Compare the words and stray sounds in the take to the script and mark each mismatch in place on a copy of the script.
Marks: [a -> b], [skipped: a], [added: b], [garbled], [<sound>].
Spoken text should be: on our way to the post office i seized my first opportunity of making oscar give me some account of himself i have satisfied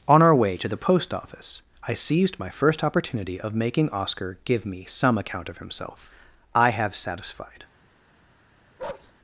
on our way to the post office i seized my first opportunity of making oscar give me some account of himself i have satisfied [bark]